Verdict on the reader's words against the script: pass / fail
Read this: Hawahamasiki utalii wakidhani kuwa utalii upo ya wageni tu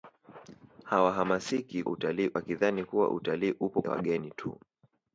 pass